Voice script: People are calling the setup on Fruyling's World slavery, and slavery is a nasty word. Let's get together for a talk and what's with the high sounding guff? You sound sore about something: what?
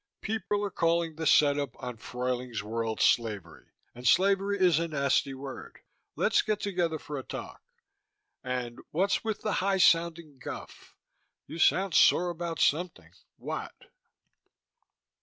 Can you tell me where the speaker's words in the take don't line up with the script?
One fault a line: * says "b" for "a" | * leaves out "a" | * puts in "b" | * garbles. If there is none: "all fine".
all fine